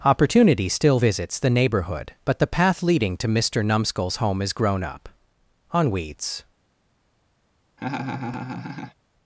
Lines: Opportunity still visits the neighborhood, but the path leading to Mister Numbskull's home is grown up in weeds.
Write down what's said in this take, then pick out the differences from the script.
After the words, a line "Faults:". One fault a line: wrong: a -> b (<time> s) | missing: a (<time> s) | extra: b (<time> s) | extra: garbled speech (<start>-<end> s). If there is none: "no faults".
Opportunity still visits the neighborhood, but the path leading to Mister Numbskull's home is grown up on weeds.
Faults:
wrong: in -> on (5.7 s)